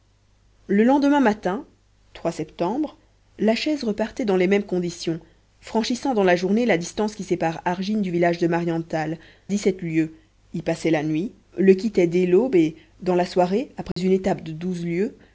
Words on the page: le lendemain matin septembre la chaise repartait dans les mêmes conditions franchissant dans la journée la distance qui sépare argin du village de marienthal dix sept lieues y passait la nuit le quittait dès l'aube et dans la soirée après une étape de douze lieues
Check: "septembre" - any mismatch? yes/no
no